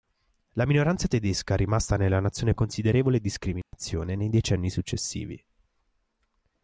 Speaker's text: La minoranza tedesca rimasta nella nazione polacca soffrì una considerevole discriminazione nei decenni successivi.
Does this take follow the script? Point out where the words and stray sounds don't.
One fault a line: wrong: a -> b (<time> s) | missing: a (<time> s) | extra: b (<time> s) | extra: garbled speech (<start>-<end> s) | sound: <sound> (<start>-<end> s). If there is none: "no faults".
missing: polacca soffrì una (2.5 s)
sound: dropout (3.6-3.7 s)